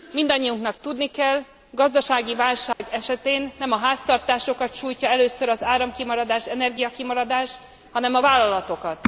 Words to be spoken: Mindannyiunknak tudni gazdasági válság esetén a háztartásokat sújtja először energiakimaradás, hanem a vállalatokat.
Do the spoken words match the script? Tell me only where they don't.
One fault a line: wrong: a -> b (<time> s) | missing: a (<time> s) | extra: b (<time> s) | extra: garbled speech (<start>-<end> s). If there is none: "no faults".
extra: kell (1.1 s)
extra: nem (3.6 s)
extra: az áramkimaradás (5.5 s)